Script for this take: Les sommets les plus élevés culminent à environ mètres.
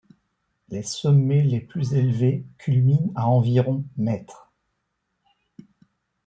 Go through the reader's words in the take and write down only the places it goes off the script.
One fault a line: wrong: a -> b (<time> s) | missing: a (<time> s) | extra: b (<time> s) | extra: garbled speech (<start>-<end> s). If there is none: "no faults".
no faults